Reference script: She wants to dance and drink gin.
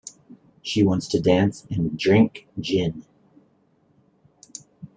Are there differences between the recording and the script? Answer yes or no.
no